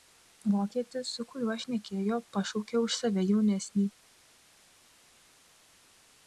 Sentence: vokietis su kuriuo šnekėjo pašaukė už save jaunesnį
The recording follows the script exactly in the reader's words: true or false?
true